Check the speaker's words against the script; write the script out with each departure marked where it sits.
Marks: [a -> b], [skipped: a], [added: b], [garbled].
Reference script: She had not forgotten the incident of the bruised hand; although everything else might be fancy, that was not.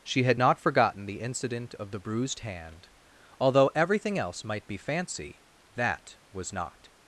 She had not forgotten the incident of the bruised hand; although everything else might be fancy, that was not.